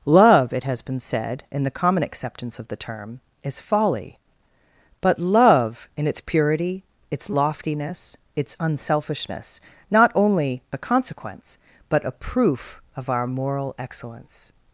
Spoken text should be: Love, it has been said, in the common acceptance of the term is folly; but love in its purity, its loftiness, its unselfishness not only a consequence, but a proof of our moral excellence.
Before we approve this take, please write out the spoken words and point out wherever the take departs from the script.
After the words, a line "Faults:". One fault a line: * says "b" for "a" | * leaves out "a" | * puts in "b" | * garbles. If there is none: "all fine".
Love, it has been said, in the common acceptance of the term is folly; but love in its purity, its loftiness, its unselfishness not only a consequence, but a proof of our moral excellence.
Faults:
all fine